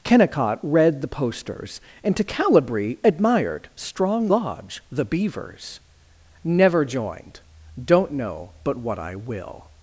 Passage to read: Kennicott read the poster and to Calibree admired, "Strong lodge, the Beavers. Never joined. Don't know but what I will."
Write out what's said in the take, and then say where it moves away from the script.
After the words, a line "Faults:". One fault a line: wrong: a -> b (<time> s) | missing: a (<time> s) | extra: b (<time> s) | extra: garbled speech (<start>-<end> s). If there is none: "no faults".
Kennicott read the posters and to Calibree admired, "Strong lodge, the Beavers. Never joined. Don't know but what I will."
Faults:
wrong: poster -> posters (1.1 s)